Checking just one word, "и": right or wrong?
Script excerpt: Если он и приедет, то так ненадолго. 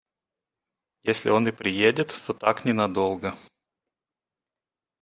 right